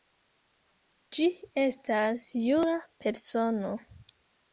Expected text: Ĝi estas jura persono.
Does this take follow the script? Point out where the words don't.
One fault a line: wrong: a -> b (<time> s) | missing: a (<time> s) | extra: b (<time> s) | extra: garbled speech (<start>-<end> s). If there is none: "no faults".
no faults